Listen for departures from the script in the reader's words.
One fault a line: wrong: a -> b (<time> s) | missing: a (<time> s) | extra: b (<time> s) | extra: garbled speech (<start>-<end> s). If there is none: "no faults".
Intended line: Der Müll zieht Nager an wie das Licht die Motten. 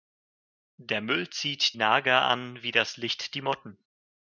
no faults